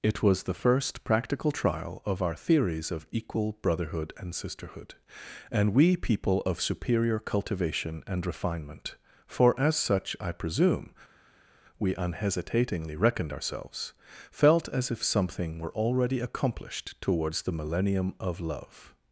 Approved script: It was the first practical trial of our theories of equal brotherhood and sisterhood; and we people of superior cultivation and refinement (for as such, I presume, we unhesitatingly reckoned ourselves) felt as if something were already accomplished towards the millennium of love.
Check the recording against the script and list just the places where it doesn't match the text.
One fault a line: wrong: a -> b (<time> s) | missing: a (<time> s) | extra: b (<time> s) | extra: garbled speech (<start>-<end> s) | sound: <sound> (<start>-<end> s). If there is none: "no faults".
no faults